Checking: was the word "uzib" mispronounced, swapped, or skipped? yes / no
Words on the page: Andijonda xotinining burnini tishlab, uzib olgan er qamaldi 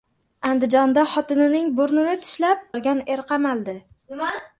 yes